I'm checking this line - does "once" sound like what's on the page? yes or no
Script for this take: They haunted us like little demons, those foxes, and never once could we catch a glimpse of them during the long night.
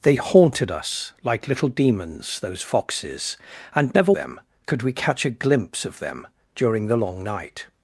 no